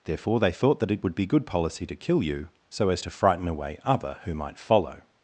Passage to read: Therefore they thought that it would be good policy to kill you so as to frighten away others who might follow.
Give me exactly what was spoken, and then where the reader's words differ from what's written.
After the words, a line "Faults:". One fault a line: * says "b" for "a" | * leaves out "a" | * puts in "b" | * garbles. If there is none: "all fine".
Therefore they thought that it would be good policy to kill you so as to frighten away other who might follow.
Faults:
* says "other" for "others"